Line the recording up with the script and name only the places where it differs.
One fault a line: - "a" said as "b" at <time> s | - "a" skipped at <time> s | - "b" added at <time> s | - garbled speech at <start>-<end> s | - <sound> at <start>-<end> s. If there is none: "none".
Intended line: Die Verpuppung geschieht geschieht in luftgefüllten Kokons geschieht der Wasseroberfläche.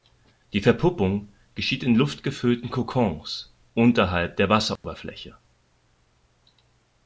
- "geschieht" skipped at 1.8 s
- "geschieht" said as "unterhalb" at 3.8 s
- dropout at 4.8-4.8 s